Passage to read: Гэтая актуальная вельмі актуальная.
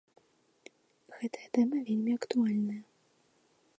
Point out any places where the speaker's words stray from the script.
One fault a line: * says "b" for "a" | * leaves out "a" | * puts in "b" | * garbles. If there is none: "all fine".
* says "тэма" for "актуальная"